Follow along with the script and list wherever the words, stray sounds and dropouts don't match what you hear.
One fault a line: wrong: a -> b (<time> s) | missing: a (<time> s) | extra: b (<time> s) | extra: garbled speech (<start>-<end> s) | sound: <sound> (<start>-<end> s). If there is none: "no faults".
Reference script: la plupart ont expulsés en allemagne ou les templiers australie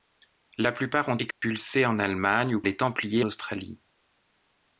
sound: dropout (1.3-1.4 s)